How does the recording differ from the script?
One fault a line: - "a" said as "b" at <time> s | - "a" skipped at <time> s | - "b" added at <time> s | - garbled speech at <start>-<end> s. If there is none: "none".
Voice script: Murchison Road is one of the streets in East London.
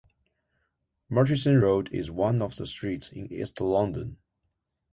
none